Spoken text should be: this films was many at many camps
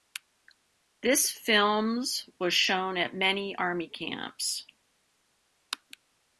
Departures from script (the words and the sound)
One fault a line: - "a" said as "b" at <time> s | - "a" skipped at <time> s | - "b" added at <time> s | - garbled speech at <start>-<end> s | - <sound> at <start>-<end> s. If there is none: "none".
- "many" said as "shown" at 2.5 s
- "army" added at 3.5 s